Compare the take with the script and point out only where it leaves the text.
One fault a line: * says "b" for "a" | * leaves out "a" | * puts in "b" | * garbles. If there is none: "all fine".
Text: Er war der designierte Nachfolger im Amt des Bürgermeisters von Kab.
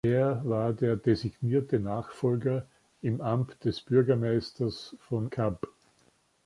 all fine